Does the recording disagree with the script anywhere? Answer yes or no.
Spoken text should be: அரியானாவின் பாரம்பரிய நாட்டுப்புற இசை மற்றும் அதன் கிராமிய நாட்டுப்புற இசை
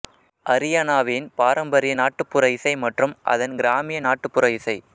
no